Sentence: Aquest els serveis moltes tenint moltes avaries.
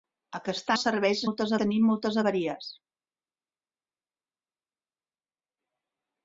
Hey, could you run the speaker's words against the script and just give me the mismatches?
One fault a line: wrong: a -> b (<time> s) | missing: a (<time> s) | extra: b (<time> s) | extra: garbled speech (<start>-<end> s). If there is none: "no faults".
no faults